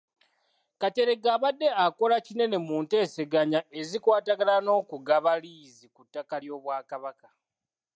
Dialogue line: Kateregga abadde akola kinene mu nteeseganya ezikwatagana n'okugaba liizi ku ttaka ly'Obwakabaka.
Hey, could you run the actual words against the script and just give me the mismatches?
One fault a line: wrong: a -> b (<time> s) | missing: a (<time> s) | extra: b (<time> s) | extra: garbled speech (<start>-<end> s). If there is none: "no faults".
no faults